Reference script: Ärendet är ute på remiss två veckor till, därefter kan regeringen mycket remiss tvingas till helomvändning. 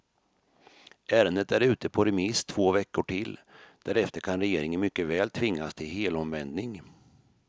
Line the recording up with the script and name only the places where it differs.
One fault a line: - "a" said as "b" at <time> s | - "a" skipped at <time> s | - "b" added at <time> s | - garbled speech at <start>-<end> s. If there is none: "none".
- "remiss" said as "väl" at 5.1 s